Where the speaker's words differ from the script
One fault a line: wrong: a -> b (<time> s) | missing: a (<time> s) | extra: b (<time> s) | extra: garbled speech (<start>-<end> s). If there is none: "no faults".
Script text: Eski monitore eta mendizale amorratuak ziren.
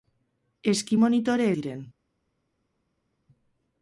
missing: eta mendizale amorratuak (1.5 s)